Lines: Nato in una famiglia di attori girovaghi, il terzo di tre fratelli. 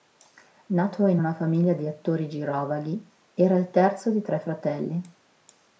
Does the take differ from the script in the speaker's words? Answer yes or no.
yes